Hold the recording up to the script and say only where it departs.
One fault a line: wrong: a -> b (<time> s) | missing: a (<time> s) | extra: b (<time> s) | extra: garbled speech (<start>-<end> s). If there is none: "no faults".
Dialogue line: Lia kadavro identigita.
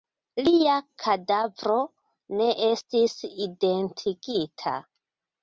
extra: ne estis (2.4 s)